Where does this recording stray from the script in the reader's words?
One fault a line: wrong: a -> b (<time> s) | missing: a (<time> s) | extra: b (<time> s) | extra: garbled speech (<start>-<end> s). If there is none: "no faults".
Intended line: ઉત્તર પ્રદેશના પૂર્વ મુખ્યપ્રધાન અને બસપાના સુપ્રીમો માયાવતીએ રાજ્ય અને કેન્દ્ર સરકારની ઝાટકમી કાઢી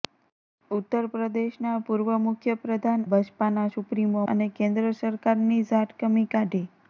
missing: અને (3.0 s)
missing: માયાવતીએ રાજ્ય (4.3 s)